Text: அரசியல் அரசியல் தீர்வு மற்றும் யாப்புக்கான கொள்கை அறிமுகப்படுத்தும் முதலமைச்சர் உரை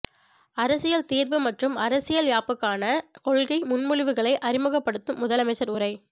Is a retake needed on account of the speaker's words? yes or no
yes